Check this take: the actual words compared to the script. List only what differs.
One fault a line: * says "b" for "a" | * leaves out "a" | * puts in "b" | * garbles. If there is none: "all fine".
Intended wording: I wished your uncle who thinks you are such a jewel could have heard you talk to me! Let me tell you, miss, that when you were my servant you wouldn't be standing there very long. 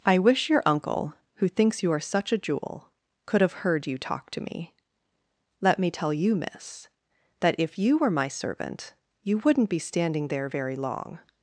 * says "wish" for "wished"
* says "if" for "when"